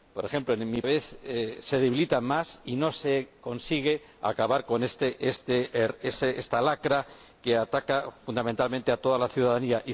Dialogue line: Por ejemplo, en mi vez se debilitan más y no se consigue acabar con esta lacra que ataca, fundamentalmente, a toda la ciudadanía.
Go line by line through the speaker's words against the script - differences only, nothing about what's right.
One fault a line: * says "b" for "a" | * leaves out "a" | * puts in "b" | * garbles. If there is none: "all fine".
all fine